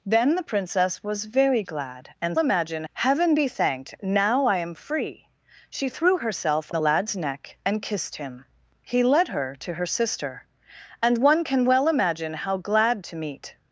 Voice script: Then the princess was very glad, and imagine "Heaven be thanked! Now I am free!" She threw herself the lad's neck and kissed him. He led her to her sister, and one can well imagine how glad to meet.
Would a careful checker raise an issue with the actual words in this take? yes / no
no